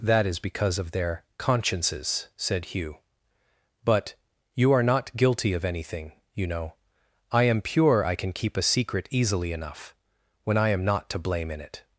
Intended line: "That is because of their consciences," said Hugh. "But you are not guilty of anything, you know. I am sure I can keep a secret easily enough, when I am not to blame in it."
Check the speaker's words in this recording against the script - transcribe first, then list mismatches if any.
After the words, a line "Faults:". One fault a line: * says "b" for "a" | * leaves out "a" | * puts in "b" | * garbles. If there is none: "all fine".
"That is because of their consciences," said Hugh. "But you are not guilty of anything, you know. I am pure I can keep a secret easily enough, when I am not to blame in it."
Faults:
* says "pure" for "sure"